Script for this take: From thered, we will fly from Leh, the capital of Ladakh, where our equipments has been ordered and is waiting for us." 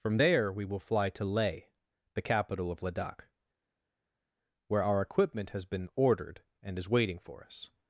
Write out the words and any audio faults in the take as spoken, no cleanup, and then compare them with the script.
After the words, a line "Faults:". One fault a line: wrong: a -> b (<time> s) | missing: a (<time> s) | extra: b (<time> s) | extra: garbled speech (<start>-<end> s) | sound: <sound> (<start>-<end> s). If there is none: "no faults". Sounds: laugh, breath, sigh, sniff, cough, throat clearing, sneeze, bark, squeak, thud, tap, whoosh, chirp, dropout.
From there, we will fly to Leh, the capital of Ladakh, where our equipment has been ordered and is waiting for us."
Faults:
wrong: thered -> there (0.1 s)
wrong: from -> to (1.1 s)
wrong: equipments -> equipment (5.0 s)